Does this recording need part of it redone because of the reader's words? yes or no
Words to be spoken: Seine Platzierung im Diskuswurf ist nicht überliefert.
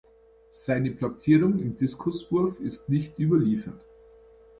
no